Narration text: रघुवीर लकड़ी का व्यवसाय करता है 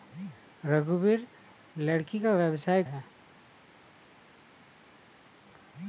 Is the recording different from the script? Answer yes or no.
yes